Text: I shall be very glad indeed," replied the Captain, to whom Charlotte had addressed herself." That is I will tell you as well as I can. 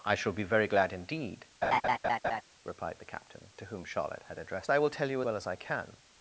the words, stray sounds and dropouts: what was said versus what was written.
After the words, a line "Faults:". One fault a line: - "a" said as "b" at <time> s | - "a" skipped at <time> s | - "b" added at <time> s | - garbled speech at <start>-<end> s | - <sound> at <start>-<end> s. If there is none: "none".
I shall be very glad indeed," replied the Captain, to whom Charlotte had addressed I will tell you well as I can.
Faults:
- laugh at 1.6-2.4 s
- "herself That is" skipped at 4.7 s
- "as" skipped at 5.2 s